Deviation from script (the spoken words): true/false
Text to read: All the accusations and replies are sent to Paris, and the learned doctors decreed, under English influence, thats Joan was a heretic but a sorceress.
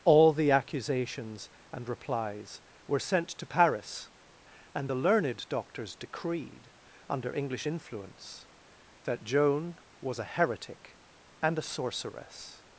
true